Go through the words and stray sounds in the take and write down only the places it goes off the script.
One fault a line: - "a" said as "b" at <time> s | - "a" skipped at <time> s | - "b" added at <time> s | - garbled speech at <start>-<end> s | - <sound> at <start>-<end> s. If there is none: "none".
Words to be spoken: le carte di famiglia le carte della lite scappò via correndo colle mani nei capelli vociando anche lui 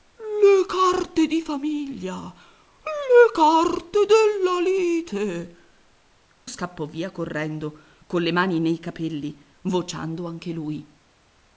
none